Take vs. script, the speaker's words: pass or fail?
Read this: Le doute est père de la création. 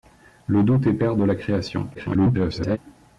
fail